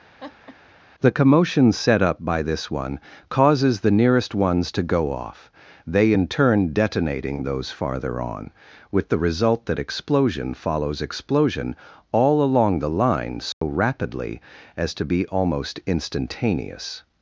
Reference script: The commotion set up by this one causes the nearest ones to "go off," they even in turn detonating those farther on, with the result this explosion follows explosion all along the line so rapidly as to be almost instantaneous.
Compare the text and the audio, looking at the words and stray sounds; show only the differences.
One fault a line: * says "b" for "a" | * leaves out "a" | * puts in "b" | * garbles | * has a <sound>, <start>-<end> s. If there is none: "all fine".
* has a laugh, 0.2-0.6 s
* leaves out "even"
* says "that" for "this"
* has a dropout, 13.5-13.6 s